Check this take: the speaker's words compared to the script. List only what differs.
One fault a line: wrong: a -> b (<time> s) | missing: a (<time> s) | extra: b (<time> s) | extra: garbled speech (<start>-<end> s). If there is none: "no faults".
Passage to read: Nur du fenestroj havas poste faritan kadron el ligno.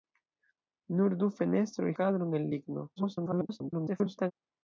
missing: havas poste faritan (1.9 s)
extra: garbled speech (3.0-4.3 s)